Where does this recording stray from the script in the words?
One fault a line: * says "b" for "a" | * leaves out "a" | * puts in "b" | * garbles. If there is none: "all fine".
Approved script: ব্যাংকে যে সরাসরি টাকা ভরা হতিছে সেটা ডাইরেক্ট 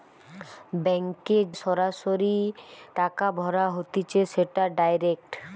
* leaves out "যে"